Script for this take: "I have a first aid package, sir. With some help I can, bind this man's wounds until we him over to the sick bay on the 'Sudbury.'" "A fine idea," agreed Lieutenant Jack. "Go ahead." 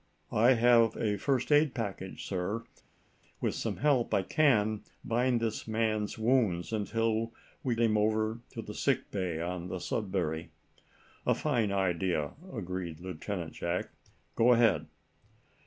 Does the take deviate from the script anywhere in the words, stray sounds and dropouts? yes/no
no